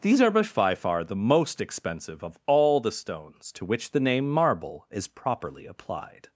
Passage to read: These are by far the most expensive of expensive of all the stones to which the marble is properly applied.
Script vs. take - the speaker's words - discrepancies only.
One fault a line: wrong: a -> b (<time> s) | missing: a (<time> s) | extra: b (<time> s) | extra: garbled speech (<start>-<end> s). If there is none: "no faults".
missing: expensive of (2.4 s)
extra: name (4.0 s)